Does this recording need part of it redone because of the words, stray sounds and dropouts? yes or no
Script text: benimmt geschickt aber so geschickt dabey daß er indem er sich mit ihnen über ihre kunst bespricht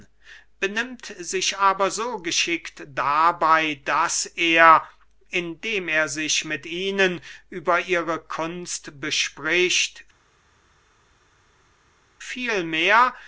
yes